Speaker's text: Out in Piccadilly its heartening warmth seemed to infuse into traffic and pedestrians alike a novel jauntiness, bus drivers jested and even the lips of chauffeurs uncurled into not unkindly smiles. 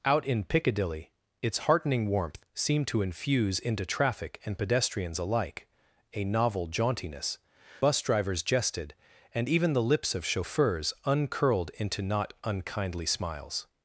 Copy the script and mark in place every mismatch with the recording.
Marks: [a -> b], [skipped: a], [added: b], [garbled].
Out in Piccadilly its heartening warmth seemed to infuse into traffic and pedestrians alike a novel jauntiness, bus drivers jested and even the lips of chauffeurs uncurled into not unkindly smiles.